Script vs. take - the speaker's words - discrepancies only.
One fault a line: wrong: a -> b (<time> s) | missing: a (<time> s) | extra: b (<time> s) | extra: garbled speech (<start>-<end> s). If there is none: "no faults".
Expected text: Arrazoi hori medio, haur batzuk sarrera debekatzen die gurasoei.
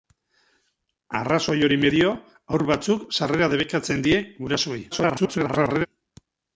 extra: garbled speech (4.9-5.9 s)